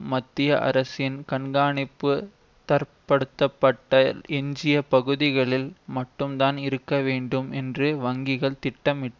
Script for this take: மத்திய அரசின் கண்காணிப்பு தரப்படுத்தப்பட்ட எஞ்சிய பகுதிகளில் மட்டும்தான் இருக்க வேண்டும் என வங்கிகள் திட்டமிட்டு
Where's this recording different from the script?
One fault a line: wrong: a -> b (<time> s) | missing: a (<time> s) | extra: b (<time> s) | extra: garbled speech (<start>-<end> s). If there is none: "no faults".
wrong: என -> என்று (7.5 s)